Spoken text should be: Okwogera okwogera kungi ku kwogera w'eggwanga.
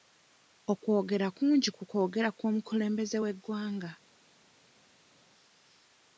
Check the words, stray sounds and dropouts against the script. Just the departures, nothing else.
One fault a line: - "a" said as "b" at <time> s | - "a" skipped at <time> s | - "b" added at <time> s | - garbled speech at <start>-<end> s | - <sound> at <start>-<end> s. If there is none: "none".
- "okwogera" skipped at 1.3 s
- "kw'omukulembeze" added at 2.4 s